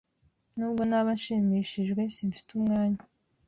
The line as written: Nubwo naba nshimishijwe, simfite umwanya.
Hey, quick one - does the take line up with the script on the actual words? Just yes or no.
yes